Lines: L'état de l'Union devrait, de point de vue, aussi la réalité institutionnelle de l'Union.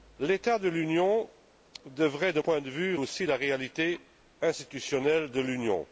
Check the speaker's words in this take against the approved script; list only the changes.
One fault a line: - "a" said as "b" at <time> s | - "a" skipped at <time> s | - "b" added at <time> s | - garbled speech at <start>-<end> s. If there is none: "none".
none